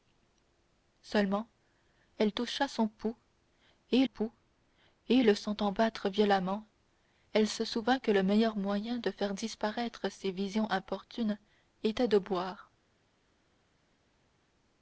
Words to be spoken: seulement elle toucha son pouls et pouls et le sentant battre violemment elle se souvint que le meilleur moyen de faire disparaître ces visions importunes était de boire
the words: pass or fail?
pass